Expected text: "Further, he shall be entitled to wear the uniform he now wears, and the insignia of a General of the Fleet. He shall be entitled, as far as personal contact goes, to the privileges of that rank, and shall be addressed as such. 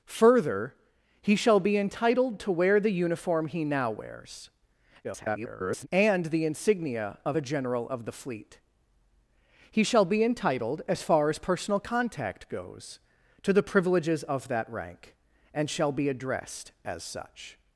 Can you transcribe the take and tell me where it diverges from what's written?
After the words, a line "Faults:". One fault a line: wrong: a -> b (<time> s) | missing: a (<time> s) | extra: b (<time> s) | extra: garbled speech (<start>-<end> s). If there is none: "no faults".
"Further, he shall be entitled to wear the uniform he now wears, [garbled] and the insignia of a General of the Fleet. He shall be entitled, as far as personal contact goes, to the privileges of that rank, and shall be addressed as such.
Faults:
extra: garbled speech (5.0-5.9 s)